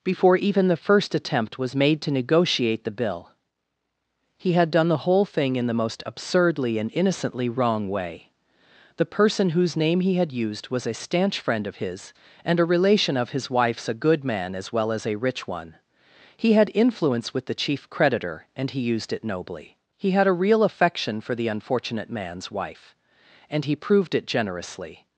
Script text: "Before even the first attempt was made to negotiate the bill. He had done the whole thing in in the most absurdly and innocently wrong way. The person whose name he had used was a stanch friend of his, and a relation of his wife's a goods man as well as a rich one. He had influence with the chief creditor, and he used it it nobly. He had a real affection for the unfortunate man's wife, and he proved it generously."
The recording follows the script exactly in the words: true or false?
false